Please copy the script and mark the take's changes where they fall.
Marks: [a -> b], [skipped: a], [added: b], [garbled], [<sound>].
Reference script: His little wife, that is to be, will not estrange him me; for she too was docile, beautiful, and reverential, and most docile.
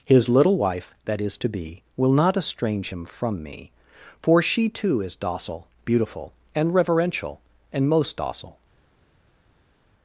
His little wife, that is to be, will not estrange him [added: from] me; for she too [was -> is] docile, beautiful, and reverential, and most docile.